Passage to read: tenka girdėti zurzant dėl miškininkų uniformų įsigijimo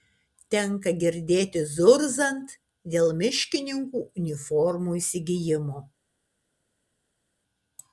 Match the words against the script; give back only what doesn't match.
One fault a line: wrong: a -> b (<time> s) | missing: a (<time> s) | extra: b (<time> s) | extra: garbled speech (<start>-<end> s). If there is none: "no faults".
no faults